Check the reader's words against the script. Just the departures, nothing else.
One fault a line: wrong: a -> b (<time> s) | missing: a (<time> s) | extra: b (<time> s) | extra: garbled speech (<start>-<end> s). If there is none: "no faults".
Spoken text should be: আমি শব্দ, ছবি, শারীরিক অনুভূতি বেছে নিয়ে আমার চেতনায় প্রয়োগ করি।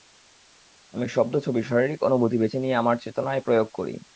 no faults